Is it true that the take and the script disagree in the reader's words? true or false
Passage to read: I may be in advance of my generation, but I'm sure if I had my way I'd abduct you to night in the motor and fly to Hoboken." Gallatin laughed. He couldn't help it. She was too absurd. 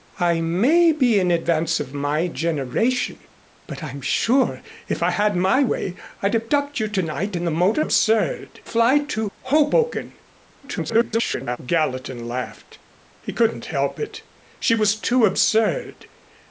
true